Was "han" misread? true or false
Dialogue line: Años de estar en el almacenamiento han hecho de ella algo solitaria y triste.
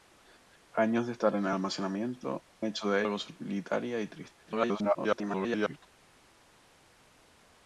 true